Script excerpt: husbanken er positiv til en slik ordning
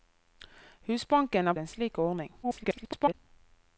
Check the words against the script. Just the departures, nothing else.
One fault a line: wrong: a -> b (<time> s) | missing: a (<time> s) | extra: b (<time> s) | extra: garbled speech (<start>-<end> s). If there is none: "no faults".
missing: positiv til (1.5 s)
extra: garbled speech (2.4-3.1 s)